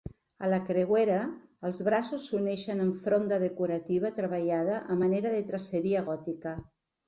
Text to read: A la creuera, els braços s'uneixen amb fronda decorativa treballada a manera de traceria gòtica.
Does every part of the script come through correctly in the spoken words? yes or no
yes